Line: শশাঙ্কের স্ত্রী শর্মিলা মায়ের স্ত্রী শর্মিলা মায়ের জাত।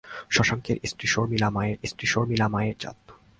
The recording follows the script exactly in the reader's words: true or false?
true